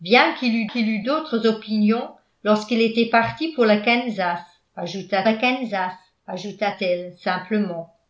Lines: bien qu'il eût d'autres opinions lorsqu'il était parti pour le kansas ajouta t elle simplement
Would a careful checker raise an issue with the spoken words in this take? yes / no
yes